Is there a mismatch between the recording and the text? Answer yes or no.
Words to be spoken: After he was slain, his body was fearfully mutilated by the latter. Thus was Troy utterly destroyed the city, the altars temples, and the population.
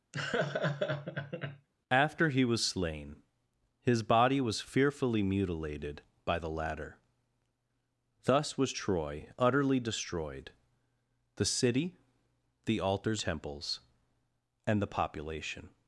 no